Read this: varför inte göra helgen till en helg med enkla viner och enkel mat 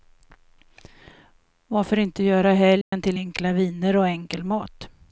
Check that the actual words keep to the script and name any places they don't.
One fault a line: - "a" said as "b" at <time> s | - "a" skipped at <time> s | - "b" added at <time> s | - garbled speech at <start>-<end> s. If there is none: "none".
- "en helg med" skipped at 3.2 s